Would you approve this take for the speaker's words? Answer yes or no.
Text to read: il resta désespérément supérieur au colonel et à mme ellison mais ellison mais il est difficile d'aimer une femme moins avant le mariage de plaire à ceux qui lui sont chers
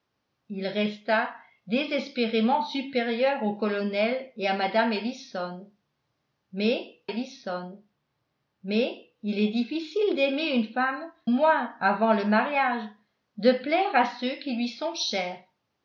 yes